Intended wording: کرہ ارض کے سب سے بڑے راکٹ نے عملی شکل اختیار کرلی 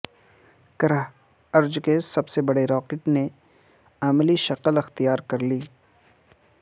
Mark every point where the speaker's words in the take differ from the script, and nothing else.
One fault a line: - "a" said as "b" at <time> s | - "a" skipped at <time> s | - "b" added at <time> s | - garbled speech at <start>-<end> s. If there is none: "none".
none